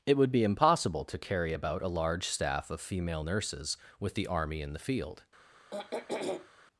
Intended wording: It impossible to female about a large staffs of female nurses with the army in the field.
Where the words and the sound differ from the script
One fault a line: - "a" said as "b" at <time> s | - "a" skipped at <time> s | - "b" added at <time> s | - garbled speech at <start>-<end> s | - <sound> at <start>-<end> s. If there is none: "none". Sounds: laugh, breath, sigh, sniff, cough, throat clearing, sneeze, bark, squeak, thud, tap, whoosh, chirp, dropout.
- "would be" added at 0.2 s
- "female" said as "carry" at 1.2 s
- "staffs" said as "staff" at 2.3 s
- throat clearing at 5.7-6.5 s